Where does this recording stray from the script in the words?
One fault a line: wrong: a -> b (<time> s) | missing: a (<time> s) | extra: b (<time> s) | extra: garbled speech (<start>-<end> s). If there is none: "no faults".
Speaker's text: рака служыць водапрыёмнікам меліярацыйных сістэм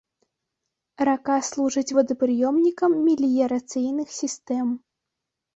no faults